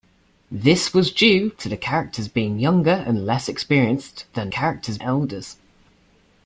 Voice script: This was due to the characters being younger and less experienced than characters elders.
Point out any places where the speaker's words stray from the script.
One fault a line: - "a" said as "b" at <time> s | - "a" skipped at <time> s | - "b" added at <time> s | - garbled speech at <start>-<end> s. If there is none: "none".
none